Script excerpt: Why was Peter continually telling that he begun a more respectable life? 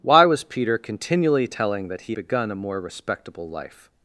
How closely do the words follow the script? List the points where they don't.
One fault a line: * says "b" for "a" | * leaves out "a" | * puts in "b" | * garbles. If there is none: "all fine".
all fine